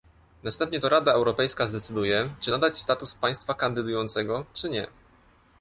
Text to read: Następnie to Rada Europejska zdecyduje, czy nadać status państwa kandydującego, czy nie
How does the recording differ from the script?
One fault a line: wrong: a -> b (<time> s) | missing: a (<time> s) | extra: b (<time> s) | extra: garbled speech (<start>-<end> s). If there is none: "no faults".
no faults